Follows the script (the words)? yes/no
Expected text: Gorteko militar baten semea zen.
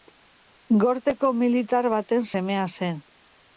yes